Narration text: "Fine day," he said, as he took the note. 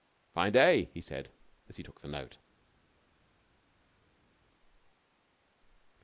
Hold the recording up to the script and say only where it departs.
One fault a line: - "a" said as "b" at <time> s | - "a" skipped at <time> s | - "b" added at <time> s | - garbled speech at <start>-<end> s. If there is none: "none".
none